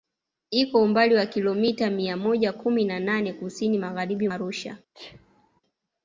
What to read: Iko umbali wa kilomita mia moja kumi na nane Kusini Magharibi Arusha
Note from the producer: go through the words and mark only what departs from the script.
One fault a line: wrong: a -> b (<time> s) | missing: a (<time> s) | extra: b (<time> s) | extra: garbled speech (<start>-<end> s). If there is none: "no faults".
no faults